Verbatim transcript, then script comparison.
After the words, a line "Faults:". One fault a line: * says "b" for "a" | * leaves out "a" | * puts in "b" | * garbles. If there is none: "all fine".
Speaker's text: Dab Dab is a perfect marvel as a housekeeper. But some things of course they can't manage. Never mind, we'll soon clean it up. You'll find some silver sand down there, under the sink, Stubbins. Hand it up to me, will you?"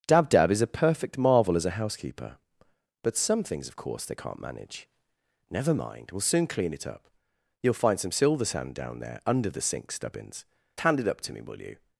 Dab Dab is a perfect marvel as a housekeeper. But some things of course they can't manage. Never mind, we'll soon clean it up. You'll find some silver sand down there, under the sink, Stubbins. Hand it up to me, will you?"
Faults:
all fine